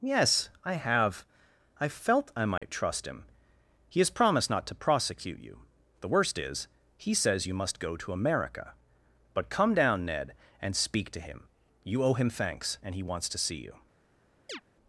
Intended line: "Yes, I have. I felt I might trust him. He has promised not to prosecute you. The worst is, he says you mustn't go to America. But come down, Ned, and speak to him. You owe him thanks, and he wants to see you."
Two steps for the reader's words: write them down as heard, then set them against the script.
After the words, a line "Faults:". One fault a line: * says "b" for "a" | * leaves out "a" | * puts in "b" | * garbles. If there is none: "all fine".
"Yes, I have. I felt I might trust him. He has promised not to prosecute you. The worst is, he says you must go to America. But come down, Ned, and speak to him. You owe him thanks, and he wants to see you."
Faults:
* says "must" for "mustn't"